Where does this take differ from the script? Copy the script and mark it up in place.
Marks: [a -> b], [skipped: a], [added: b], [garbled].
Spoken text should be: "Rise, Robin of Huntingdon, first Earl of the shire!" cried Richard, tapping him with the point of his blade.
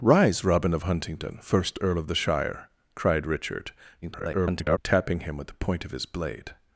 "Rise, Robin of Huntingdon, first Earl of the shire!" cried Richard, [garbled] tapping him with the point of his blade.